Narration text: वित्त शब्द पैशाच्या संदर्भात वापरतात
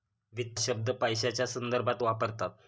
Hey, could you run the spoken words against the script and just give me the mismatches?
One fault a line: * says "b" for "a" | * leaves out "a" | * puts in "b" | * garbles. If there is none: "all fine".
all fine